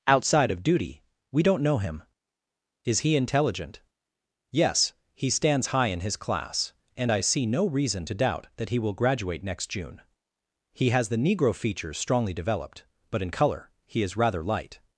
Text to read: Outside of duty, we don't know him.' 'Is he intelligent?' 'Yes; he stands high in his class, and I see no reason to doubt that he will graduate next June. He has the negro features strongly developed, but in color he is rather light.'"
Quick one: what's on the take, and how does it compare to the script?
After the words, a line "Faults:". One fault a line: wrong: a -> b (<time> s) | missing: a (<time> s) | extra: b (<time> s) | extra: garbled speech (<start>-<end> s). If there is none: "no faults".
Outside of duty, we don't know him.' 'Is he intelligent?' 'Yes; he stands high in his class, and I see no reason to doubt that he will graduate next June. He has the negro features strongly developed, but in color he is rather light.'"
Faults:
no faults